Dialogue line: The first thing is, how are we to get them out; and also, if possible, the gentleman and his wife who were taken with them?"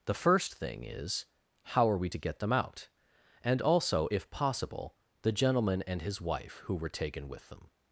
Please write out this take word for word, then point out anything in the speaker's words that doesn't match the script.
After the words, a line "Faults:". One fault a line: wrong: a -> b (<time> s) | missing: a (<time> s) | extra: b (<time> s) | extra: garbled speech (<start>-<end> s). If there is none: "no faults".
The first thing is, how are we to get them out; and also, if possible, the gentleman and his wife who were taken with them?"
Faults:
no faults